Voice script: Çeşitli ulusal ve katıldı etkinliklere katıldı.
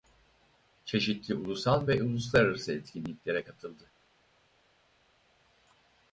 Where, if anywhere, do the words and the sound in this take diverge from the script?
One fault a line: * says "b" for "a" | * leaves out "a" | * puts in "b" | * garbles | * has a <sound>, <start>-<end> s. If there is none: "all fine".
* says "uluslararası" for "katıldı"